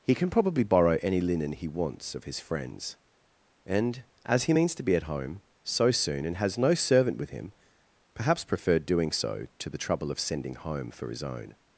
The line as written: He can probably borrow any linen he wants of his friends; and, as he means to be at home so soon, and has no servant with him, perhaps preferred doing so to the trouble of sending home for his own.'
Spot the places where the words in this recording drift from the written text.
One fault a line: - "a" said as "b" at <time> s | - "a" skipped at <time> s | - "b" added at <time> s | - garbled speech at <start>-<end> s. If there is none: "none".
none